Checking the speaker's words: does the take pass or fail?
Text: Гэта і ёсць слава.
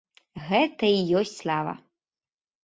pass